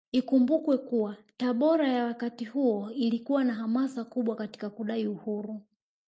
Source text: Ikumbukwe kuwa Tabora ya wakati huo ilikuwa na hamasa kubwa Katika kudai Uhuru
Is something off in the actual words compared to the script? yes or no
no